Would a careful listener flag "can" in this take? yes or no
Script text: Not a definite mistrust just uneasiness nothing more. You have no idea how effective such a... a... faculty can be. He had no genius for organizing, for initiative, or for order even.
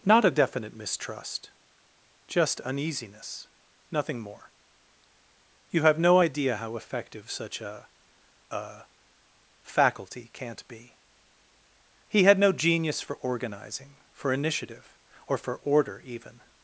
yes